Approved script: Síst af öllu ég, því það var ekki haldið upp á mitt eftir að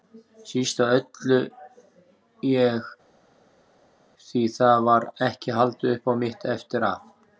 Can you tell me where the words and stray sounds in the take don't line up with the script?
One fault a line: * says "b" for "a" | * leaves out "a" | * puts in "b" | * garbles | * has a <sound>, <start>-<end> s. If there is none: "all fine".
all fine